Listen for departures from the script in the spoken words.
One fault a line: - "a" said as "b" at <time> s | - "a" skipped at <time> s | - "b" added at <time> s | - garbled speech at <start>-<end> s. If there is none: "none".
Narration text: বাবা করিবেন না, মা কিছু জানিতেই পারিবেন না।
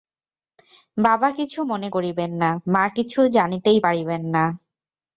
- "কিছু মনে" added at 1.3 s